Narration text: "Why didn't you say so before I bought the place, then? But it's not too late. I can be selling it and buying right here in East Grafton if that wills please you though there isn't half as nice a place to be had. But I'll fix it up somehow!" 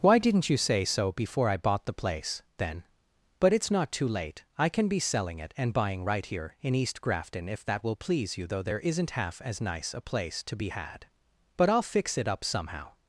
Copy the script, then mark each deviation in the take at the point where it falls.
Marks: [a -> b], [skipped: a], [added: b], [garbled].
"Why didn't you say so before I bought the place, then? But it's not too late. I can be selling it and buying right here in East Grafton if that [wills -> will] please you though there isn't half as nice a place to be had. But I'll fix it up somehow!"